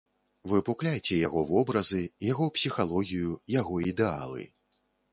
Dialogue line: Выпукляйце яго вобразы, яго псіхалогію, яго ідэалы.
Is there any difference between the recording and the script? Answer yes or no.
no